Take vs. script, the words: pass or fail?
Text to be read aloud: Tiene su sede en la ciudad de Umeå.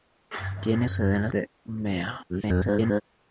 fail